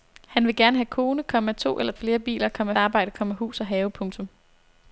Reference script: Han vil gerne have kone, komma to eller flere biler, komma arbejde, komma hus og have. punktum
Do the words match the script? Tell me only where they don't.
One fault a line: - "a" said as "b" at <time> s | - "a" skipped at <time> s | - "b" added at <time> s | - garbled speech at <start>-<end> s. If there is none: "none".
none